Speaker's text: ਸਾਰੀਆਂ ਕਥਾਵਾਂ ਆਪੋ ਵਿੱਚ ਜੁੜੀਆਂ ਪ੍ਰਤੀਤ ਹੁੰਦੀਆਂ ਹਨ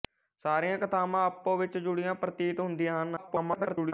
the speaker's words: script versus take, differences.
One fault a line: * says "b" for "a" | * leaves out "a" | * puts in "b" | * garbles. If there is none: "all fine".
* garbles